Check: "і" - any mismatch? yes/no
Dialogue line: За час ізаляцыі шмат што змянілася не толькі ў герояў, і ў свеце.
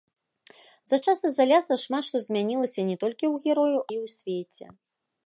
no